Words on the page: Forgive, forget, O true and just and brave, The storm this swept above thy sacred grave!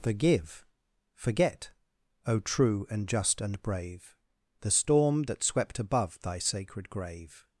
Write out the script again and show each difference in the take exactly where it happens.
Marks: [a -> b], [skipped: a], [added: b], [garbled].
Forgive, forget, O true and just and brave, The storm [this -> that] swept above thy sacred grave!